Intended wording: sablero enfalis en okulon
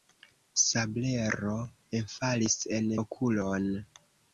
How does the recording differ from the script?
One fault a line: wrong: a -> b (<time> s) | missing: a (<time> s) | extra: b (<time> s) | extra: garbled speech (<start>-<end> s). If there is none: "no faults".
no faults